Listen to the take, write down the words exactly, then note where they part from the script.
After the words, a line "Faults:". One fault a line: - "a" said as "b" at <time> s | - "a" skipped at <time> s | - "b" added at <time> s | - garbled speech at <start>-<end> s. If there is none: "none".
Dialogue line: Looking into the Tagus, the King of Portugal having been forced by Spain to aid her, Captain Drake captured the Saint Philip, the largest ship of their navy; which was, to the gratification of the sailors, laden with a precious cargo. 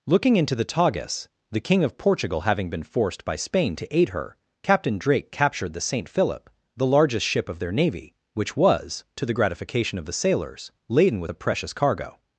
Looking into the Tagus, the King of Portugal having been forced by Spain to aid her, Captain Drake captured the Saint Philip, the largest ship of their navy; which was, to the gratification of the sailors, laden with a precious cargo.
Faults:
none